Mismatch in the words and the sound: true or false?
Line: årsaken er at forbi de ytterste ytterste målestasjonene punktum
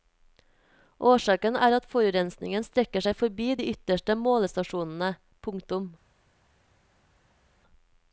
true